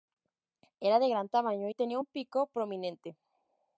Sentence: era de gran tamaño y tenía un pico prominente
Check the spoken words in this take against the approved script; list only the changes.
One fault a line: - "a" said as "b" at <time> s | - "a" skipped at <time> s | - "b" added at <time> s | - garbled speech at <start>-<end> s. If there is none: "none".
none